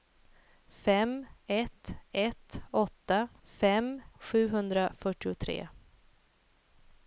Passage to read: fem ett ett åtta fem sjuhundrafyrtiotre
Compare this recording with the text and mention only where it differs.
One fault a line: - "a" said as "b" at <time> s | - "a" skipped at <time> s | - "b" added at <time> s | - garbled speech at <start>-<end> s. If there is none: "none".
none